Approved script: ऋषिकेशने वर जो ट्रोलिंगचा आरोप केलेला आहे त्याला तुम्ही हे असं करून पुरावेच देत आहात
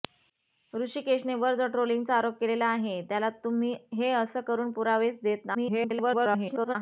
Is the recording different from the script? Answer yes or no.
yes